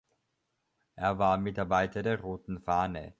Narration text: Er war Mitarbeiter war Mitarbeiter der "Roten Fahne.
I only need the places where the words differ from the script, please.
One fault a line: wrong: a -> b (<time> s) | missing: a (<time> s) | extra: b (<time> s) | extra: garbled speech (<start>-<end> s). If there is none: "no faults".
missing: war Mitarbeiter (2.0 s)